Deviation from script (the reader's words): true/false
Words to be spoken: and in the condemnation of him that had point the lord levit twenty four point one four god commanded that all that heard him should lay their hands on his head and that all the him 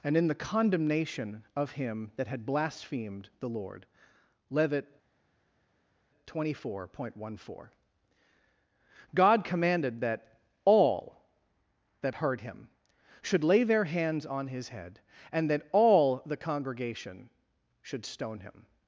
true